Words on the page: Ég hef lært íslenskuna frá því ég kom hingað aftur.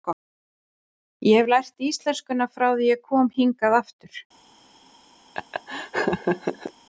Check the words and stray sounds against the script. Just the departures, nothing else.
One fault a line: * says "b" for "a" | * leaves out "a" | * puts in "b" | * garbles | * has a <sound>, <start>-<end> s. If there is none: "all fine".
* has a laugh, 5.3-6.7 s